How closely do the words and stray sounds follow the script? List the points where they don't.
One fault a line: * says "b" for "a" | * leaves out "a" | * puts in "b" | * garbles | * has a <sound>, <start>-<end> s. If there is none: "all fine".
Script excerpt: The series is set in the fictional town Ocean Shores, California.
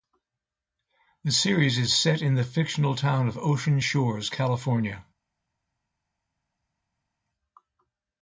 * puts in "of"